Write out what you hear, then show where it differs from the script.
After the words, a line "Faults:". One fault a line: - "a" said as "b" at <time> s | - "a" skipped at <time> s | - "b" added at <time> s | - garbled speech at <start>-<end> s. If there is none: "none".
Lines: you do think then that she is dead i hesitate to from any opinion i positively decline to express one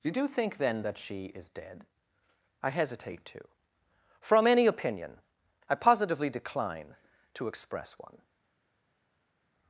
you do think then that she is dead i hesitate to from any opinion i positively decline to express one
Faults:
none